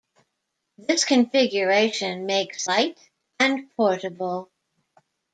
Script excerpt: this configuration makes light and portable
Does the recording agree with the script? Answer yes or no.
yes